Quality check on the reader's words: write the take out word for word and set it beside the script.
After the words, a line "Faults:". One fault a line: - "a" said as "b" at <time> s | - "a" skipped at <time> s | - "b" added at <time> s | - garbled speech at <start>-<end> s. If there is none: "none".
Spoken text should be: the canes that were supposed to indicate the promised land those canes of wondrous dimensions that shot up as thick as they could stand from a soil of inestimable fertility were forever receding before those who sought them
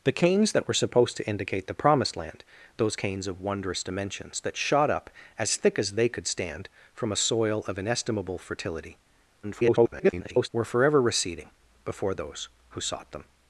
the canes that were supposed to indicate the promised land those canes of wondrous dimensions that shot up as thick as they could stand from a soil of inestimable fertility [garbled] were forever receding before those who sought them
Faults:
- garbled speech at 9.4-10.5 s